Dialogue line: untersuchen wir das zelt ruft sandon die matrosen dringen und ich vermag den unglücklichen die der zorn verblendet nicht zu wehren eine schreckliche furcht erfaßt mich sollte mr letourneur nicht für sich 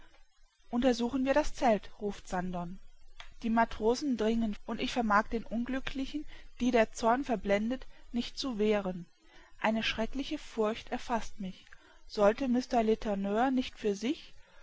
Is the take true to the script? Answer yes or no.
yes